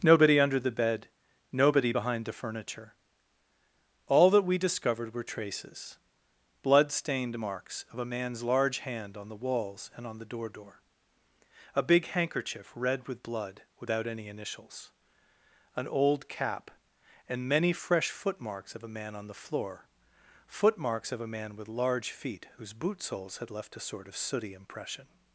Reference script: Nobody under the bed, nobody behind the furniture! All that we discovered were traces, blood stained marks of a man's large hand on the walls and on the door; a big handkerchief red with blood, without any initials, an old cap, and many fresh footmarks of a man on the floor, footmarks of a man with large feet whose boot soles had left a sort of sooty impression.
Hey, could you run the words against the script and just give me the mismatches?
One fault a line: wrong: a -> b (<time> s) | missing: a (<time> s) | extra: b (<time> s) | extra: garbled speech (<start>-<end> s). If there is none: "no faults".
extra: door (10.5 s)